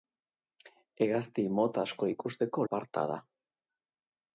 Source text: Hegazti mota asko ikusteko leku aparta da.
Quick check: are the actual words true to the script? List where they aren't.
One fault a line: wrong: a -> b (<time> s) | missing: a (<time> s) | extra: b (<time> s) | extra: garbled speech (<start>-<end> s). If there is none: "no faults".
missing: leku (2.7 s)